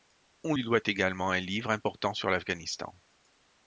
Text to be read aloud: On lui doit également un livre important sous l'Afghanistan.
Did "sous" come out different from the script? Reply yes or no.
yes